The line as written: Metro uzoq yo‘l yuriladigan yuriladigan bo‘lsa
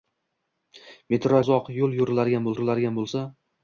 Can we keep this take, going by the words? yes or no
yes